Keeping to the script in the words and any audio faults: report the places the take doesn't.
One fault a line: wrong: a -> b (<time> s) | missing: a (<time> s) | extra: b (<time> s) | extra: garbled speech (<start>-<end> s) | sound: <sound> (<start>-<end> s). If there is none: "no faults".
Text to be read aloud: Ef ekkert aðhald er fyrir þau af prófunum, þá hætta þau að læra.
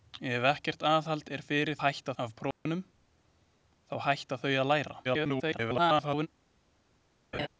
wrong: þau -> hætta (1.8 s)
sound: dropout (2.5-2.7 s)
extra: garbled speech (5.0-6.3 s)
sound: laugh (7.3-7.5 s)